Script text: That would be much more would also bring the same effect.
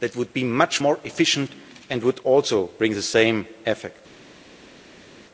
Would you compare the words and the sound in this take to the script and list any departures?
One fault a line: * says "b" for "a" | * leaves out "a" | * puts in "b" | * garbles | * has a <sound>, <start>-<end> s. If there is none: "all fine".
* puts in "efficient and"